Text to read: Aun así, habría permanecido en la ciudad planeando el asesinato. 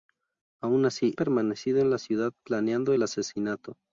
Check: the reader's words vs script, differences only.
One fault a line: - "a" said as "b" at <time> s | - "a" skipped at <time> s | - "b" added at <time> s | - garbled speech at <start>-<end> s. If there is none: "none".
- "habría" skipped at 1.1 s